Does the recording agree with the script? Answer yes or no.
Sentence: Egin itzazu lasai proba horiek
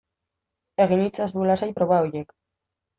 yes